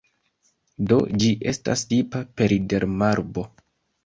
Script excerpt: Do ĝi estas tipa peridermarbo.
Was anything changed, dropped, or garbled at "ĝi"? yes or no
no